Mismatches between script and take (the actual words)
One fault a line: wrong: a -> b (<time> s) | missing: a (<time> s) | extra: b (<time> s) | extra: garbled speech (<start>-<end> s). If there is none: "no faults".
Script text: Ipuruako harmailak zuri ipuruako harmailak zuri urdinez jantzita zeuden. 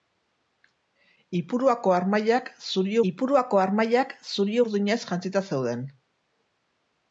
no faults